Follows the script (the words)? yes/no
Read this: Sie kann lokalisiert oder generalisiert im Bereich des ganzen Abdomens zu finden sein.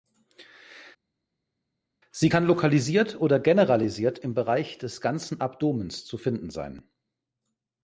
yes